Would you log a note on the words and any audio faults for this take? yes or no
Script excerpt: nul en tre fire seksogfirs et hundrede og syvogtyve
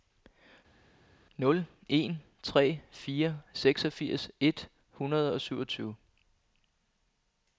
no